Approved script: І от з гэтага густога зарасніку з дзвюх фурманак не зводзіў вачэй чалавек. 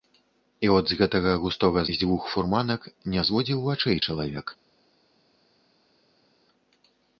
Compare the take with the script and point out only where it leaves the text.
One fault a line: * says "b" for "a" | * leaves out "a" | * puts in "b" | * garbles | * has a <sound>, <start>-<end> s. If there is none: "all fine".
* leaves out "зарасніку"